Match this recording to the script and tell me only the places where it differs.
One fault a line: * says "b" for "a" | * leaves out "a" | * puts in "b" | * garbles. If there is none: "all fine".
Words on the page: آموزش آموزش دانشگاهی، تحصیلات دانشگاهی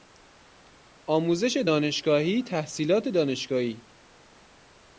* leaves out "آموزش"